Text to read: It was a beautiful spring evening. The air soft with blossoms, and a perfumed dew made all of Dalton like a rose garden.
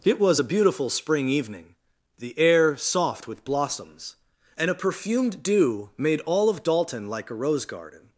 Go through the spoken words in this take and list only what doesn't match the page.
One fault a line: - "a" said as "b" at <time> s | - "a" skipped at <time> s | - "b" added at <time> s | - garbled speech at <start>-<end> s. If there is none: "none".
none